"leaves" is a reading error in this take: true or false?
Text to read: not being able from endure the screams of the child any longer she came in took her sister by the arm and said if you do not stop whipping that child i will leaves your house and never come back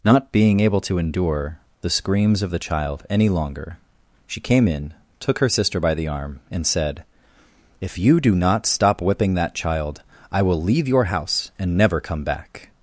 true